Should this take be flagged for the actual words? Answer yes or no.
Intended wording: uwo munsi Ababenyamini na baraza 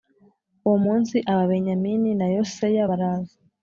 yes